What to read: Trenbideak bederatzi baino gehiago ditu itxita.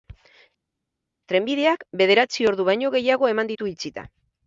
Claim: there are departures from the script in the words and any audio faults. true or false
true